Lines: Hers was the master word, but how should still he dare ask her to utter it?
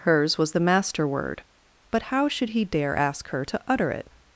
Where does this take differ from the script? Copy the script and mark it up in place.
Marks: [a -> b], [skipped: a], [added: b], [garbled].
Hers was the master word, but how should [skipped: still] he dare ask her to utter it?